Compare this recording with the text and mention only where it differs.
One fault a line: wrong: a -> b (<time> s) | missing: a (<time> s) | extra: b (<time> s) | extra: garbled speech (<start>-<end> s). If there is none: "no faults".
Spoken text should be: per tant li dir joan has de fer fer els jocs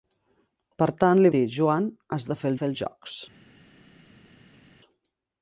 no faults